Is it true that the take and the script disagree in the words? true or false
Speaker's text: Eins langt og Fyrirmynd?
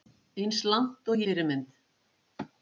false